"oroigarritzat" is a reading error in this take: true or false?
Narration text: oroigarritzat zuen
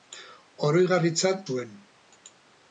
false